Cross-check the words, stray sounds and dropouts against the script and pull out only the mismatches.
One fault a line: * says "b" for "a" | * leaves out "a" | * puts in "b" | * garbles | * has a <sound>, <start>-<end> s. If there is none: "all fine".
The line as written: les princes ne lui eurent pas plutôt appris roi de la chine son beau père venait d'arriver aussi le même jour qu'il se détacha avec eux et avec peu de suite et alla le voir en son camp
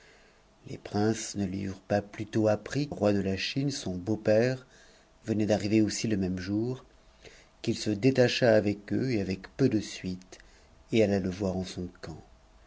all fine